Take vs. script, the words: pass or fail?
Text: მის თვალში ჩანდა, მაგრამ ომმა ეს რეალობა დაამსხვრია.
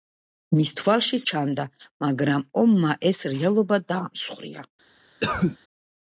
pass